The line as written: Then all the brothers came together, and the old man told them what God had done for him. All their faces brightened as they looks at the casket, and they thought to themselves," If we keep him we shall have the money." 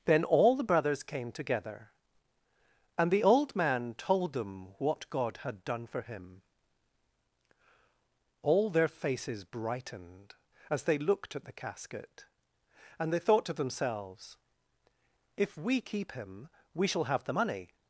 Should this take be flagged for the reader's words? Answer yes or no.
yes